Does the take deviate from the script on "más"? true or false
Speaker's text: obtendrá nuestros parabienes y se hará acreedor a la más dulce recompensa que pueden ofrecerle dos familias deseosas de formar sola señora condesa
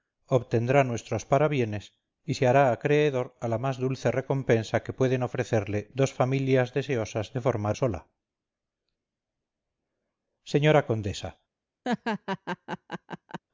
false